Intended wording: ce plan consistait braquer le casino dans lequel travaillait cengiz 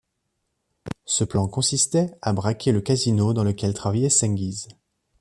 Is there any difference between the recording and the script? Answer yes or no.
yes